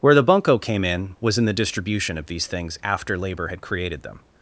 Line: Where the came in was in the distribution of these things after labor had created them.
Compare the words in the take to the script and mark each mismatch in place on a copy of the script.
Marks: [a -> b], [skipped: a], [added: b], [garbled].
Where the [added: bunco] came in was in the distribution of these things after labor had created them.